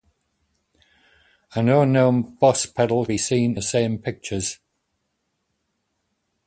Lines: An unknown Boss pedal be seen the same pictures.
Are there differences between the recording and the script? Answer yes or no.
no